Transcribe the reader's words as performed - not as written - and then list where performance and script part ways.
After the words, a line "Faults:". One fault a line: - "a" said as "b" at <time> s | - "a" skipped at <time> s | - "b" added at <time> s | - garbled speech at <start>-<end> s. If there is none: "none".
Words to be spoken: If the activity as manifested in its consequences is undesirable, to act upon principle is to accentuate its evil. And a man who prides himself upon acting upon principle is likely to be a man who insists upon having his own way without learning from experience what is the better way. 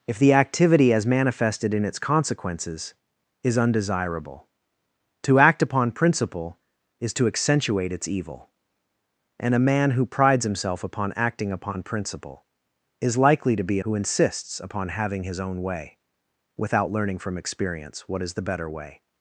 If the activity as manifested in its consequences is undesirable, to act upon principle is to accentuate its evil. And a man who prides himself upon acting upon principle is likely to be who insists upon having his own way without learning from experience what is the better way.
Faults:
- "a man" skipped at 13.8 s